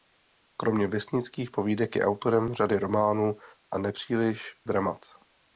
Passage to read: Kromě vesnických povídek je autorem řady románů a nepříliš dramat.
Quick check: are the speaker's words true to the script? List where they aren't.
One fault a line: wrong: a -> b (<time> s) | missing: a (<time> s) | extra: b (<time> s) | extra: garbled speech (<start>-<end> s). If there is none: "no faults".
no faults